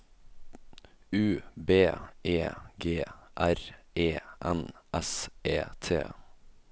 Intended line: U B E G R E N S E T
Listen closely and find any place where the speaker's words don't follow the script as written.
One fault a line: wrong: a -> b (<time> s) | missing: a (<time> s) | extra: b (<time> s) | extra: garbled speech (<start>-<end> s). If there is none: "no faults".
no faults